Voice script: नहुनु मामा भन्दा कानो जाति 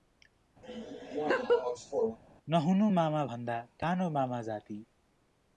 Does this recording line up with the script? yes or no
no